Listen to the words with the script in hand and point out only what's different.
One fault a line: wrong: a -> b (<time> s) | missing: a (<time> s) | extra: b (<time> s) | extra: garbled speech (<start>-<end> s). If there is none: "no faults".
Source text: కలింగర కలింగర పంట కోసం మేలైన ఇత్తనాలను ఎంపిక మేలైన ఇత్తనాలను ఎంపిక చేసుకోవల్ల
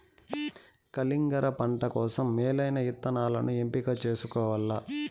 missing: కలింగర (1.5 s)
missing: మేలైన ఇత్తనాలను ఎంపిక (4.0 s)